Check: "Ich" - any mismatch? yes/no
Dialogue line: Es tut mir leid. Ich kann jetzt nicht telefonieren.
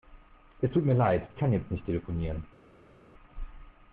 yes